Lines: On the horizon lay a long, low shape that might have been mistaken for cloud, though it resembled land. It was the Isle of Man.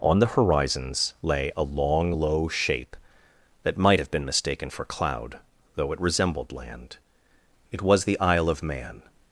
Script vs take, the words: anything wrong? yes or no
yes